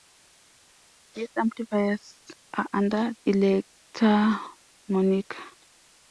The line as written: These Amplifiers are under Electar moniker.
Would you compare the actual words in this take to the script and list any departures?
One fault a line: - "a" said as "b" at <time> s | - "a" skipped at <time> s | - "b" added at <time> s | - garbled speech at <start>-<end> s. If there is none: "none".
none